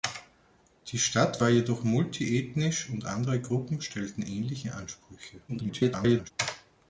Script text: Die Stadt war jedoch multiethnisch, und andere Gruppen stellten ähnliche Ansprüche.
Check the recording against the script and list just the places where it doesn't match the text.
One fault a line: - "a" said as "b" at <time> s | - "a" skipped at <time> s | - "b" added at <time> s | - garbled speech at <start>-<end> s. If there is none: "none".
- garbled speech at 5.5-6.3 s